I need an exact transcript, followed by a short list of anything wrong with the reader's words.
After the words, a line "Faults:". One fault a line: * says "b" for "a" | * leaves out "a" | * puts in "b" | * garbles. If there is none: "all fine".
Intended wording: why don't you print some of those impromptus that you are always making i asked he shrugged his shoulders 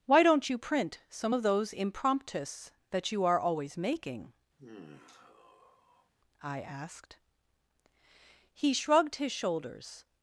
why don't you print some of those impromptus that you are always making i asked he shrugged his shoulders
Faults:
all fine